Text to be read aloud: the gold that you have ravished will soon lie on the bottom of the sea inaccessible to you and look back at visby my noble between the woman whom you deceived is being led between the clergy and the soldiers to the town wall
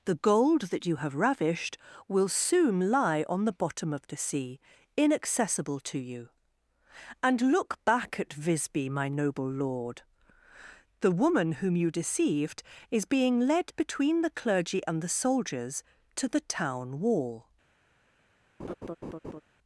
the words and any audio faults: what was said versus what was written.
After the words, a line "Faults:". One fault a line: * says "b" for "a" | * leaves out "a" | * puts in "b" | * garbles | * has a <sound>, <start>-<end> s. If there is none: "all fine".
the gold that you have ravished will soon lie on the bottom of the sea inaccessible to you and look back at visby my noble lord the woman whom you deceived is being led between the clergy and the soldiers to the town wall
Faults:
* says "lord" for "between"
* has a laugh, 18.6-19.4 s